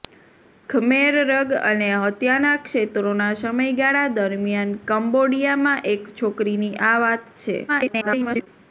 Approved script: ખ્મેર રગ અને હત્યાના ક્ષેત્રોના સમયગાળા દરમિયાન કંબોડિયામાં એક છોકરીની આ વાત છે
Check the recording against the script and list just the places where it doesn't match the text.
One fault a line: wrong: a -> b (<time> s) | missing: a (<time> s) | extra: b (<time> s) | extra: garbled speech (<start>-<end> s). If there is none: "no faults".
extra: garbled speech (7.7-8.5 s)